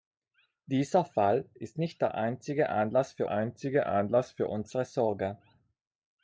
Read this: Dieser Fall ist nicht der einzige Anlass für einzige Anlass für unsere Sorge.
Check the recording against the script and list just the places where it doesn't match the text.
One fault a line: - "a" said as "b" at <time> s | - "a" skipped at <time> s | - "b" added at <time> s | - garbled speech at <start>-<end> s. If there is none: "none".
none